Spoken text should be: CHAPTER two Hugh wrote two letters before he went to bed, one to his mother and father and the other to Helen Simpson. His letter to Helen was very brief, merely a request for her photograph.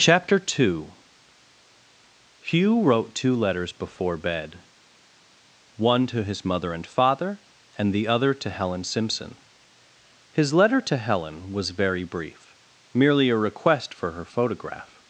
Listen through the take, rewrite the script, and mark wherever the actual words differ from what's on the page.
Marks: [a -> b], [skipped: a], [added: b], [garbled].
CHAPTER two Hugh wrote two letters before [skipped: he went to] bed, one to his mother and father and the other to Helen Simpson. His letter to Helen was very brief, merely a request for her photograph.